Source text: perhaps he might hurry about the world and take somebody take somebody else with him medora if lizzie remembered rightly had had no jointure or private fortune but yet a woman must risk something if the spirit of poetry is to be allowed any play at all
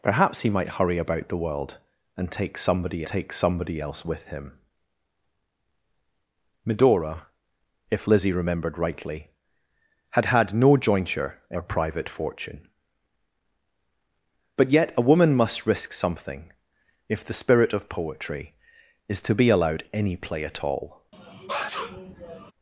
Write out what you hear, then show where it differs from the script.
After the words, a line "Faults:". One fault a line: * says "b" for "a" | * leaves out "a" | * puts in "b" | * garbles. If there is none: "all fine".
perhaps he might hurry about the world and take somebody take somebody else with him medora if lizzie remembered rightly had had no jointure or private fortune but yet a woman must risk something if the spirit of poetry is to be allowed any play at all
Faults:
all fine